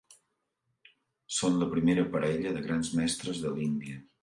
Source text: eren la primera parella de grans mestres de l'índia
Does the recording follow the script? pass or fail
fail